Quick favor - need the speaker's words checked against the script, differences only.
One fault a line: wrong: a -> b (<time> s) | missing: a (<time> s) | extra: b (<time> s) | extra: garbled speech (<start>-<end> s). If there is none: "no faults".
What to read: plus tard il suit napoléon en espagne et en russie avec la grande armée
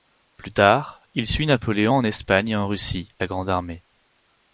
missing: avec (3.1 s)